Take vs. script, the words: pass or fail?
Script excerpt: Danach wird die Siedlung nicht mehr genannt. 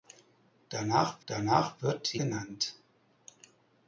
fail